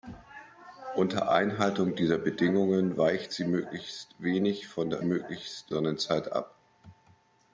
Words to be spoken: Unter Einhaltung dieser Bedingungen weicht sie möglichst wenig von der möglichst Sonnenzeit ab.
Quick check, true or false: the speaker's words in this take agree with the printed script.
true